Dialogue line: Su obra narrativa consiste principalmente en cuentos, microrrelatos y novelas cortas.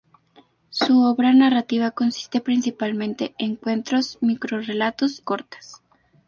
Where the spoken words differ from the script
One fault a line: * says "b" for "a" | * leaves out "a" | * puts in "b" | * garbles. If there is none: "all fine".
* leaves out "y novelas"